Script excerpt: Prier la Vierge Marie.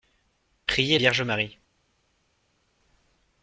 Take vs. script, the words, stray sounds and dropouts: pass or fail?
fail